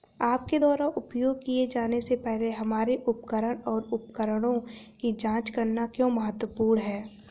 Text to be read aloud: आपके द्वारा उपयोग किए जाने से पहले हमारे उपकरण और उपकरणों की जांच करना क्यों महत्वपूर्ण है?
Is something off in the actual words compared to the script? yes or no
no